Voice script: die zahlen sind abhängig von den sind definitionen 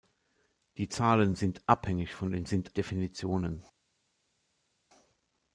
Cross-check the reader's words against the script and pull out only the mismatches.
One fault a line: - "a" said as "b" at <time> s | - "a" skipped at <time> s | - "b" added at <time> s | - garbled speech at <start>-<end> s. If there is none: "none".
none